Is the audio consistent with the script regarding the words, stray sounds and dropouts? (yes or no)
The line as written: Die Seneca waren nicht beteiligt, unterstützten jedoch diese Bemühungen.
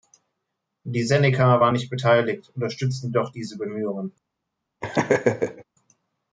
no